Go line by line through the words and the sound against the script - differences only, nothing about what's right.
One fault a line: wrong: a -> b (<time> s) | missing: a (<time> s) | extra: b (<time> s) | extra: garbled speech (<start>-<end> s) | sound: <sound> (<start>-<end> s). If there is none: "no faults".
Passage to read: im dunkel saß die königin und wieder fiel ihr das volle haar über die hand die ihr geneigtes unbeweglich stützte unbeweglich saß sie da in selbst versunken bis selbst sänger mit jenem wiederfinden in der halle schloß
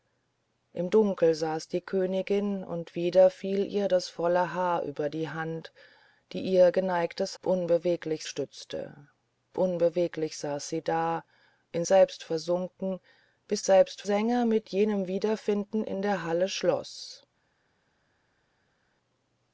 no faults